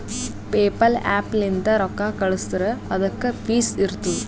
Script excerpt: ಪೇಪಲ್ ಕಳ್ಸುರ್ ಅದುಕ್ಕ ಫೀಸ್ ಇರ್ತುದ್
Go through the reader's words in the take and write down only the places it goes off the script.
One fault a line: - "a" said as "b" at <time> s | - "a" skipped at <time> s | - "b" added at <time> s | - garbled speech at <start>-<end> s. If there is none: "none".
- "ಆ್ಯಪ್ ಲಿಂತ್ ರೊಕ್ಕಾ" added at 1.1 s